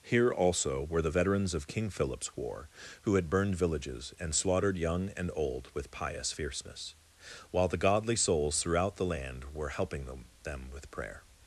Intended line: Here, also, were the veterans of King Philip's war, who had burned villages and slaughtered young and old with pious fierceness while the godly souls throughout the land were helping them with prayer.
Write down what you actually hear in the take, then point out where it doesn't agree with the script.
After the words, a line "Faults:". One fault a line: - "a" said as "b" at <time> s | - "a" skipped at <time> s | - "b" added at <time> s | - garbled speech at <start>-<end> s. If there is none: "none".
Here, also, were the veterans of King Philip's war, who had burned villages and slaughtered young and old with pious fierceness while the godly souls throughout the land were helping them them with prayer.
Faults:
- "them" added at 10.4 s